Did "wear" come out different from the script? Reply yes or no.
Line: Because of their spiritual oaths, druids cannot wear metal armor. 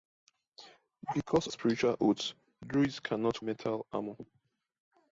yes